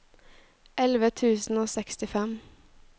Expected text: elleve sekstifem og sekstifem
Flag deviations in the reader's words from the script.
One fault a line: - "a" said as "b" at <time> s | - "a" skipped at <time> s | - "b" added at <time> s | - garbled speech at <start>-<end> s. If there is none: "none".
- "sekstifem" said as "tusen" at 1.1 s